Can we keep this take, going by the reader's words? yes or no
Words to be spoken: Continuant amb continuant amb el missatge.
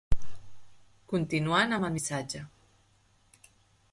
no